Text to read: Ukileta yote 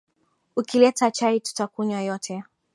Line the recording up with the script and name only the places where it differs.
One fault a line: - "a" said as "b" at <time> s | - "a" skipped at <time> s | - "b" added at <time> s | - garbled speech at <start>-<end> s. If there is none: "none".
- "chai tutakunywa" added at 1.1 s